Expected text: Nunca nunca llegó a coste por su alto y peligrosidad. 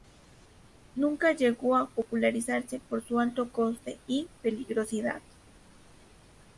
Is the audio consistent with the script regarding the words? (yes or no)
no